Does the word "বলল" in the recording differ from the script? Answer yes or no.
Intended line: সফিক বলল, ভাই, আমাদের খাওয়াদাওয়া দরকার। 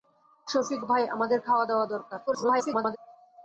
yes